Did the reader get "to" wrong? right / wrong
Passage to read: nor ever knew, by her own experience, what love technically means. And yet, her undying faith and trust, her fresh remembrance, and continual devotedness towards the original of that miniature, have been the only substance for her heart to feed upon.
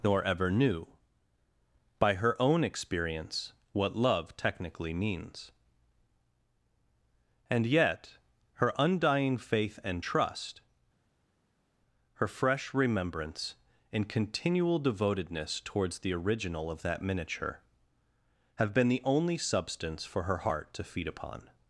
right